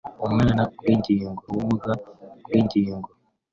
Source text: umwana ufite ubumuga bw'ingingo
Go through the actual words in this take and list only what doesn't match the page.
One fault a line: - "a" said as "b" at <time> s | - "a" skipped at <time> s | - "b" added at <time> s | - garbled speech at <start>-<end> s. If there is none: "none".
- "ufite" said as "bw'ingingo" at 0.8 s